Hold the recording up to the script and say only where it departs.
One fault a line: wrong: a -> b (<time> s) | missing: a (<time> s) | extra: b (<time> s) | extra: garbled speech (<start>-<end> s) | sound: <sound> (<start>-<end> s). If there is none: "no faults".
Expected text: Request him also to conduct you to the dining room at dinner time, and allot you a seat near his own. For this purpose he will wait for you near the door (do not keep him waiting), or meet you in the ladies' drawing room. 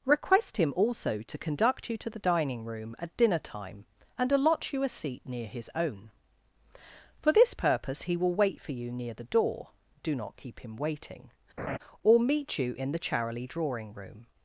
sound: laugh (11.6-11.8 s)
wrong: ladies -> charily (13.0 s)